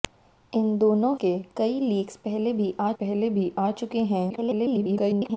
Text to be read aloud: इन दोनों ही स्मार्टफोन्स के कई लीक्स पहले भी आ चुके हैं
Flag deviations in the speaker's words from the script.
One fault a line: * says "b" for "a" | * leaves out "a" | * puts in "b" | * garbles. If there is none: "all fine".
* leaves out "ही स्मार्टफोन्स"
* puts in "पहले भी आ"
* garbles